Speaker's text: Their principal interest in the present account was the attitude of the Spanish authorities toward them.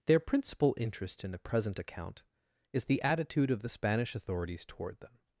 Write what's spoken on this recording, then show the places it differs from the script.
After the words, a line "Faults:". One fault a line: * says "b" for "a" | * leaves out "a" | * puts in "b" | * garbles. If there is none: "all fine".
Their principal interest in the present account is the attitude of the Spanish authorities toward them.
Faults:
* says "is" for "was"